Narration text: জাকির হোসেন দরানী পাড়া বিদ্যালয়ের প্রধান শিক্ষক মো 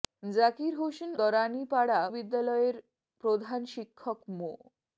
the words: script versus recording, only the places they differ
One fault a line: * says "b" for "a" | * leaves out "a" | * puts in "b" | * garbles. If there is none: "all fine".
all fine